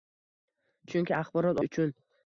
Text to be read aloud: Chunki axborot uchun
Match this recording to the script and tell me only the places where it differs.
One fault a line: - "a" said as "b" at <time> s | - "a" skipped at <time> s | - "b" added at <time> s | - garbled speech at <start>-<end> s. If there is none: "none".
none